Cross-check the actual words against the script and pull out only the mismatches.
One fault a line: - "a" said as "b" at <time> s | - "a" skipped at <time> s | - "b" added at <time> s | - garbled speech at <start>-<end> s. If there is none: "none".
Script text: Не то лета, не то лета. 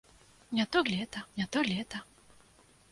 none